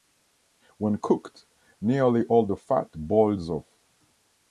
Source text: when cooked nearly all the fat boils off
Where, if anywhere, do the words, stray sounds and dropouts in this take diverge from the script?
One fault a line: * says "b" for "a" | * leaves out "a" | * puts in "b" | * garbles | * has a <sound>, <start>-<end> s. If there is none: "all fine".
all fine